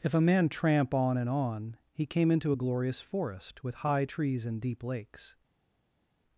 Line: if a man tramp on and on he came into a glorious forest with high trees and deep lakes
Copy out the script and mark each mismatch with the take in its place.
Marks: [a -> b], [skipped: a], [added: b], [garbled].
if a man tramp on and on he came into a glorious forest with high trees and deep lakes